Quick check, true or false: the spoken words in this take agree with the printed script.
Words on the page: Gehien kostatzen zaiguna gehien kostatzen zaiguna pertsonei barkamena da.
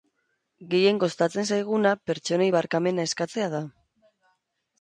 false